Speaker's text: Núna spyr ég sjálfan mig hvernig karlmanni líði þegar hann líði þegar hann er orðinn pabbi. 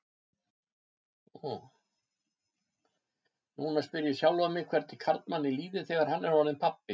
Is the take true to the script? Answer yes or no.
no